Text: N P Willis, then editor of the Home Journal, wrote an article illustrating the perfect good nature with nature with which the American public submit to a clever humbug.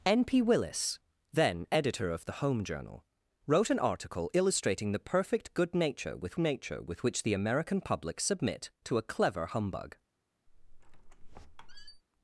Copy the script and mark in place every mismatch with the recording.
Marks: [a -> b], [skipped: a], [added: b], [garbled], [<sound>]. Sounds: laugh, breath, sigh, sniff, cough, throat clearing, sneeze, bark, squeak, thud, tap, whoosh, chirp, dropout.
N P Willis, then editor of the Home Journal, wrote an article illustrating the perfect good nature with nature with which the American public submit to a clever humbug. [squeak]